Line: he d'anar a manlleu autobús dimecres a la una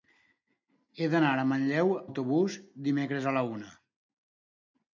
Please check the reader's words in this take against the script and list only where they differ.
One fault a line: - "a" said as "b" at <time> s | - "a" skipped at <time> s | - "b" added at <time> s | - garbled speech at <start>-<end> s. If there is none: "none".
none